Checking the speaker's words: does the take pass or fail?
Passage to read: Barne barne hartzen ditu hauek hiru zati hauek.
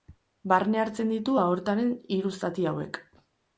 fail